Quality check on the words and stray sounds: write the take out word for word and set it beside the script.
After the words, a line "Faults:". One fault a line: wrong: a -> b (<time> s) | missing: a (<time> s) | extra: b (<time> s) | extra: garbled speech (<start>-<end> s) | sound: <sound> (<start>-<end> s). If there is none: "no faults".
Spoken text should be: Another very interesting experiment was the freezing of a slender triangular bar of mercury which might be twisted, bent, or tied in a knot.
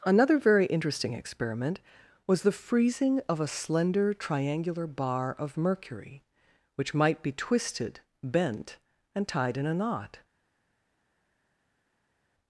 Another very interesting experiment was the freezing of a slender triangular bar of mercury which might be twisted, bent, and tied in a knot.
Faults:
wrong: or -> and (9.1 s)